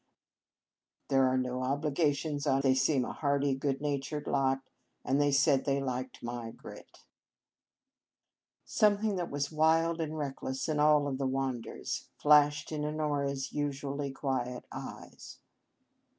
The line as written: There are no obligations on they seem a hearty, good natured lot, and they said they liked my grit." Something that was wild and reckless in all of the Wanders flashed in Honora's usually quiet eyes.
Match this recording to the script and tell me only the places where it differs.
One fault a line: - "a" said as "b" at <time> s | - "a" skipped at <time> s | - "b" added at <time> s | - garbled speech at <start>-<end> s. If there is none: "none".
none